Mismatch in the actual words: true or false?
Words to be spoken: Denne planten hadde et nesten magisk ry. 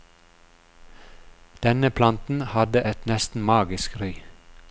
false